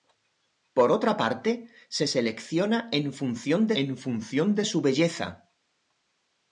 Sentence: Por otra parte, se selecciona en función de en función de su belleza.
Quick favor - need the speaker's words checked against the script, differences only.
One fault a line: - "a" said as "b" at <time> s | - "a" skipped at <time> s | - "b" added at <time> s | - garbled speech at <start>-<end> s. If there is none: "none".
none